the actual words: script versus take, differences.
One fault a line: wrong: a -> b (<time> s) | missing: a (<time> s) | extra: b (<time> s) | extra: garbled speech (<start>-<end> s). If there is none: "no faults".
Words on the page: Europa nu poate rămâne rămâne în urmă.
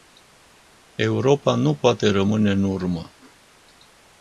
missing: rămâne (2.5 s)